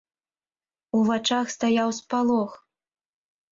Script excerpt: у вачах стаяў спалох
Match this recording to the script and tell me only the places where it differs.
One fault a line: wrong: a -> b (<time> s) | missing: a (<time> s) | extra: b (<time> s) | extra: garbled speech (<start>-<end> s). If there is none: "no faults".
no faults